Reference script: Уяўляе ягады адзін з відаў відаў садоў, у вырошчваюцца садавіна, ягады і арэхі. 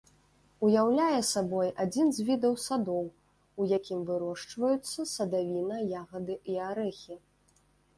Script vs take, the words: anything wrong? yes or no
yes